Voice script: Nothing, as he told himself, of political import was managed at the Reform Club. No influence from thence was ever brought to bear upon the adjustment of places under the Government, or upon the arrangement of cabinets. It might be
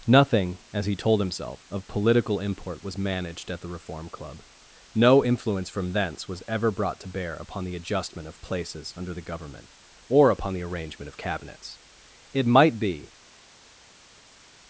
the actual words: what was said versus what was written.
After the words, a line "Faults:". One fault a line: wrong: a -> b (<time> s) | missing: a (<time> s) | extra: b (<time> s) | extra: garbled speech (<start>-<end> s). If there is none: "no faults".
Nothing, as he told himself, of political import was managed at the Reform Club. No influence from thence was ever brought to bear upon the adjustment of places under the Government, or upon the arrangement of cabinets. It might be
Faults:
no faults